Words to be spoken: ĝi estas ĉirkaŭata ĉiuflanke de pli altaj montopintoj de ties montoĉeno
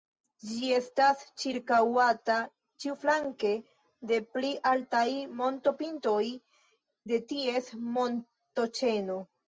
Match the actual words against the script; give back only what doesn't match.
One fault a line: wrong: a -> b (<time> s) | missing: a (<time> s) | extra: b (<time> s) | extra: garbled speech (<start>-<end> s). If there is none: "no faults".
no faults